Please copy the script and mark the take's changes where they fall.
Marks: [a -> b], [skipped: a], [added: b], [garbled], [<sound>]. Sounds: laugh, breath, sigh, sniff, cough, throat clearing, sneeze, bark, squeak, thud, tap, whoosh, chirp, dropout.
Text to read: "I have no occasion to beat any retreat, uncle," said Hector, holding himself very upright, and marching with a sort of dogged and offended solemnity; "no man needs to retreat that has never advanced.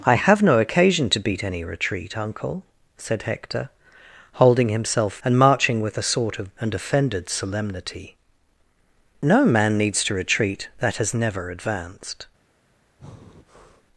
"I have no occasion to beat any retreat, uncle," said Hector, holding himself [skipped: very upright,] and marching with a sort of [skipped: dogged] and offended solemnity; "no man needs to retreat that has never advanced. [breath]